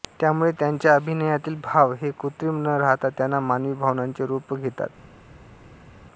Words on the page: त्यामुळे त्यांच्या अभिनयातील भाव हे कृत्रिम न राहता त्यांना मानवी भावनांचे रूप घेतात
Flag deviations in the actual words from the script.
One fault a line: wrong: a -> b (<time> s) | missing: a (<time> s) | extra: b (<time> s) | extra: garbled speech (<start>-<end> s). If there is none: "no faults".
no faults